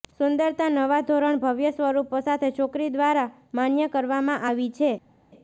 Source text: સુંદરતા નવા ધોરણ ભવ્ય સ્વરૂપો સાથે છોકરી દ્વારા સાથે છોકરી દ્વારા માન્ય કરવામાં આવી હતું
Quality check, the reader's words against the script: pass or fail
fail